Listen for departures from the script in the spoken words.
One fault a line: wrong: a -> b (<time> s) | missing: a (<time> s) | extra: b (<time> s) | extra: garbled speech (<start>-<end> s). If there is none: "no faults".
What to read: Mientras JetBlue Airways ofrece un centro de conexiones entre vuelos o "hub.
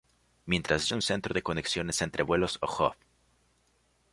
missing: JetBlue Airways ofrece (0.9 s)